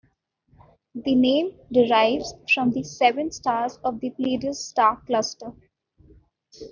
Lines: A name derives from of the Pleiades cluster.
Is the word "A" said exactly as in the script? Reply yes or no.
no